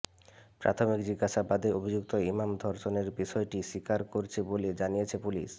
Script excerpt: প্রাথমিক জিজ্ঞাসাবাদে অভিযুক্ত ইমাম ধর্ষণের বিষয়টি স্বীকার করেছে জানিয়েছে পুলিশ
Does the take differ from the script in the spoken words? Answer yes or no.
yes